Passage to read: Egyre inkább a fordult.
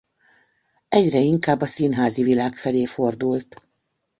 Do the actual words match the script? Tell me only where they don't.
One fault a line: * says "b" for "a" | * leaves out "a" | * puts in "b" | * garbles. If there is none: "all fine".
* puts in "színházi világ felé"